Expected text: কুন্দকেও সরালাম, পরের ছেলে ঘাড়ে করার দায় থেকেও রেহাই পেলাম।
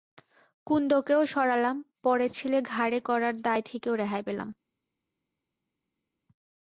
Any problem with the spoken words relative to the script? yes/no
no